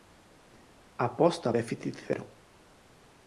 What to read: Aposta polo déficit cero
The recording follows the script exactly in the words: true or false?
false